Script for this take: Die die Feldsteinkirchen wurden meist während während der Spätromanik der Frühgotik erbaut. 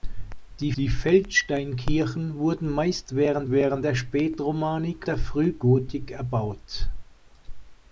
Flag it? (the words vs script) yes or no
no